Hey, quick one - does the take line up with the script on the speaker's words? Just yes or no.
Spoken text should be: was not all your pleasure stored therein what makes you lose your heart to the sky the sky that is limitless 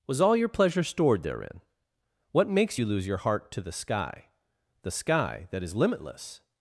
no